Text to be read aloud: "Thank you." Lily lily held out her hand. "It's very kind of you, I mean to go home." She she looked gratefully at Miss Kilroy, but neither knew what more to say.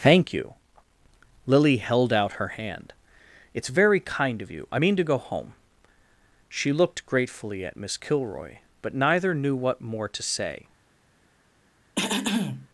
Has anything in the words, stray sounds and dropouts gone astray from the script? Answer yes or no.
yes